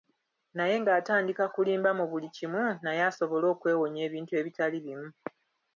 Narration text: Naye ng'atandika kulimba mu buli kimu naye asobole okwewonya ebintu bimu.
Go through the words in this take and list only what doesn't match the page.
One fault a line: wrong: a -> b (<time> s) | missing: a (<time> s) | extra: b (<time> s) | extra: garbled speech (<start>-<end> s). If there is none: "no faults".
extra: ebitali (4.4 s)